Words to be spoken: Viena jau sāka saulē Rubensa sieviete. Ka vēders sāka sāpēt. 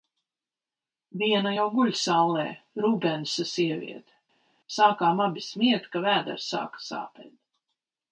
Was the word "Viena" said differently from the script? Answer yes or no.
no